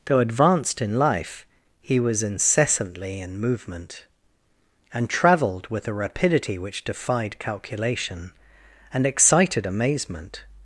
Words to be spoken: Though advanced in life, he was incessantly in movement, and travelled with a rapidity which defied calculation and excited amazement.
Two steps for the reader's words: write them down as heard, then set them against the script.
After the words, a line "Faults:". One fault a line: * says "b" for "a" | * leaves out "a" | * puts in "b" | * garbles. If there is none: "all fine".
Though advanced in life, he was incessantly in movement, and travelled with a rapidity which defied calculation and excited amazement.
Faults:
all fine